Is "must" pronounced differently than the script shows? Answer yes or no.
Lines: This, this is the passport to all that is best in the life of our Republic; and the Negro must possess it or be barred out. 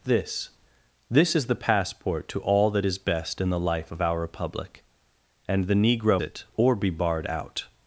yes